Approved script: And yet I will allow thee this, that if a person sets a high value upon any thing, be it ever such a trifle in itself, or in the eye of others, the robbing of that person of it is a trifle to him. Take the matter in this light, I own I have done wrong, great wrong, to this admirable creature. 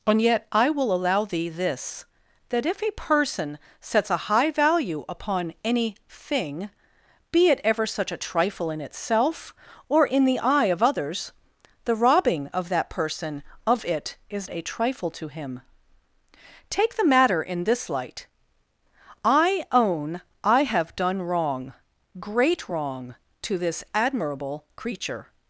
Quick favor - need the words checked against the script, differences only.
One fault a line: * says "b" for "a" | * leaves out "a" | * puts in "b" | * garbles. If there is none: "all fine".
all fine